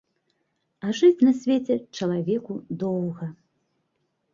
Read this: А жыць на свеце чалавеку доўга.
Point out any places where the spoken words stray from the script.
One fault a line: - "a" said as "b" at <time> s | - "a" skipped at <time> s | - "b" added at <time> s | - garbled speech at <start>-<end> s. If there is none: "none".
none